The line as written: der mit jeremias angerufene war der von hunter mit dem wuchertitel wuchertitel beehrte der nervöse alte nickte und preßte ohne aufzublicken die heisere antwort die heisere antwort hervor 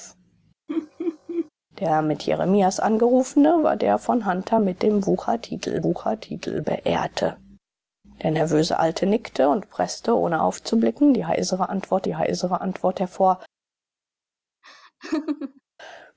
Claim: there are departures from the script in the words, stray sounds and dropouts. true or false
true